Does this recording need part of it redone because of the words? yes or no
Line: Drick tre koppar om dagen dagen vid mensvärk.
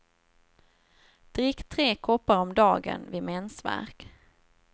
yes